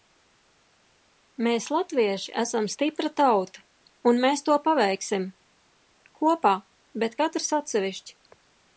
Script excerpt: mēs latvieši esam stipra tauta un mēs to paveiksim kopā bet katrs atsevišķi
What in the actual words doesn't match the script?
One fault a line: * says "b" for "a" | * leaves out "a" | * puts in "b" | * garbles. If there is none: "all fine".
all fine